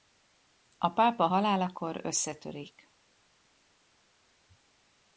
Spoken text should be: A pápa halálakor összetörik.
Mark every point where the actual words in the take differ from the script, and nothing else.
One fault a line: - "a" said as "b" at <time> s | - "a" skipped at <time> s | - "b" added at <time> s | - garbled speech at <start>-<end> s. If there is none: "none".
none